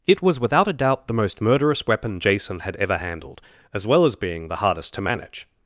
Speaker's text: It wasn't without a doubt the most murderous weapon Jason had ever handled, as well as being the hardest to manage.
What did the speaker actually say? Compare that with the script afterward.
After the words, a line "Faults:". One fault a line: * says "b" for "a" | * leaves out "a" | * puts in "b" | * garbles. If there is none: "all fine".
It was without a doubt the most murderous weapon Jason had ever handled, as well as being the hardest to manage.
Faults:
* says "was" for "wasn't"